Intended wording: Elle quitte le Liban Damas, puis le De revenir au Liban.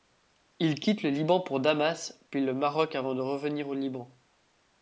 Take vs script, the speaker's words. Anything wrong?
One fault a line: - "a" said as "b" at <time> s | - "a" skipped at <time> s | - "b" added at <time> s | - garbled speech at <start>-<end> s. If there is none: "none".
- "Elle" said as "Il" at 0.6 s
- "pour" added at 1.4 s
- "Maroc avant" added at 2.5 s